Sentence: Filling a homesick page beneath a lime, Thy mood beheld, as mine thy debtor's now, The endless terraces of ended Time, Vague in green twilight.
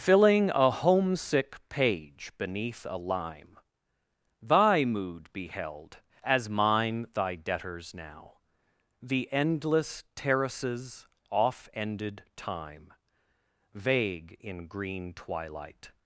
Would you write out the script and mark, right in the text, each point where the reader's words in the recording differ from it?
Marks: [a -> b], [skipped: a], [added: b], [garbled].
Filling a homesick page beneath a lime, Thy mood beheld, as mine thy debtor's now, The endless terraces [of -> off] ended Time, Vague in green twilight.